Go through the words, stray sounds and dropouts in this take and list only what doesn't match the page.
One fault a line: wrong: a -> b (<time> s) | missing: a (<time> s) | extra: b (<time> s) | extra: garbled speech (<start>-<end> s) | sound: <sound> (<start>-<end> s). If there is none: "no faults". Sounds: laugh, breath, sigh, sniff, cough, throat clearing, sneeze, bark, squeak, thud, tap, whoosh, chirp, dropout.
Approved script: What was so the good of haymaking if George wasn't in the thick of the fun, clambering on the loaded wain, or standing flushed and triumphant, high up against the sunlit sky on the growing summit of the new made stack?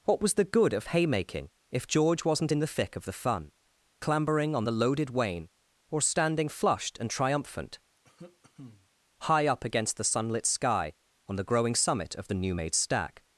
missing: so (0.3 s)
sound: cough (8.0-8.9 s)